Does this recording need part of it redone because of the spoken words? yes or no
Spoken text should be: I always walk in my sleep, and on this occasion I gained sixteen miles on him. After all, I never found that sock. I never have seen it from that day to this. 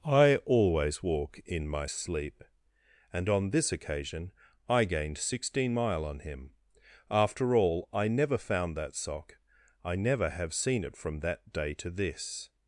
yes